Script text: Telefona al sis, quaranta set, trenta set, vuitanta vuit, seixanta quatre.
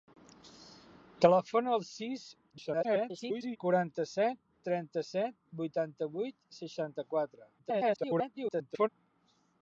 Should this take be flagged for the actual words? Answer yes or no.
yes